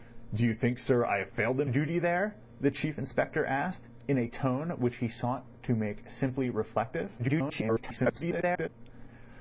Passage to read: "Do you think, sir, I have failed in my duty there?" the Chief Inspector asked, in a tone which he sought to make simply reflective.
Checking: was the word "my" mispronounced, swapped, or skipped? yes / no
yes